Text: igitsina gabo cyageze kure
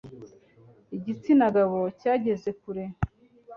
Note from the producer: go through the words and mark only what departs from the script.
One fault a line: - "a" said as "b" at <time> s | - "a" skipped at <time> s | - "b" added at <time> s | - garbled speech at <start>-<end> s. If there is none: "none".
none